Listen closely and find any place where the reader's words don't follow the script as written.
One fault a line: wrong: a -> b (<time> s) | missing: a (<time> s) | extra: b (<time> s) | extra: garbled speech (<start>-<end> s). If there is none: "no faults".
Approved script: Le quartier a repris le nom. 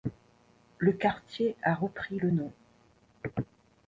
no faults